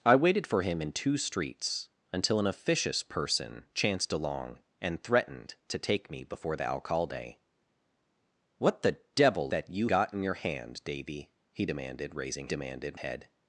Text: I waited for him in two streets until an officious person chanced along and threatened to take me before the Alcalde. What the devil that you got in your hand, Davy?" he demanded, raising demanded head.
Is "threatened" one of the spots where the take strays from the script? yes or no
no